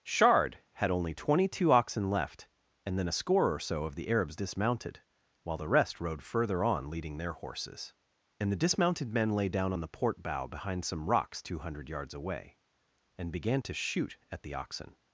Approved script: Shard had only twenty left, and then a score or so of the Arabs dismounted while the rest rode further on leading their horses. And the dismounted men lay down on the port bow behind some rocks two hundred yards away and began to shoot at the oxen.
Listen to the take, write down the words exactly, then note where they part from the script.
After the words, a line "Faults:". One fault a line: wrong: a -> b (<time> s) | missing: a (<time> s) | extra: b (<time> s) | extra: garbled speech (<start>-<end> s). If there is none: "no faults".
Shard had only twenty two oxen left, and then a score or so of the Arabs dismounted while the rest rode further on leading their horses. And the dismounted men lay down on the port bow behind some rocks two hundred yards away and began to shoot at the oxen.
Faults:
extra: two oxen (1.5 s)